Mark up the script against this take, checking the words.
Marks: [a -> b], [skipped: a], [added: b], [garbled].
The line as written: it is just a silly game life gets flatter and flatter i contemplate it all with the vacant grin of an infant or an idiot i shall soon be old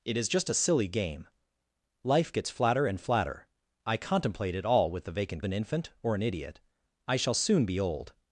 it is just a silly game life gets flatter and flatter i contemplate it all with the vacant [skipped: grin of] an infant or an idiot i shall soon be old